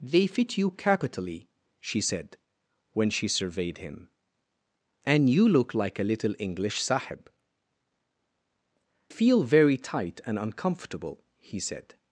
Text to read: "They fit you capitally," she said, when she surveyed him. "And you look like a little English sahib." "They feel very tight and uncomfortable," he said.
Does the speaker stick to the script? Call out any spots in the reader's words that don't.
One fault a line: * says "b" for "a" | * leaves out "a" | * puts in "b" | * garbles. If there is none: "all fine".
* leaves out "They"